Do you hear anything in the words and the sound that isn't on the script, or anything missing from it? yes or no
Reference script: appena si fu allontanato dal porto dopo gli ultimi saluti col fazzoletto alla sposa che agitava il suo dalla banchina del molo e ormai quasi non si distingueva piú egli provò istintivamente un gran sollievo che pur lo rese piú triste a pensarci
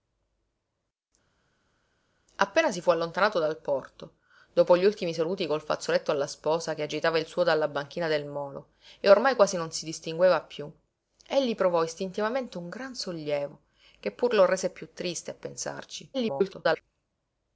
yes